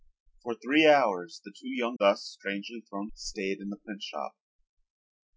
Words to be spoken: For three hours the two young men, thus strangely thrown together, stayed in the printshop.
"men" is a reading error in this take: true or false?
true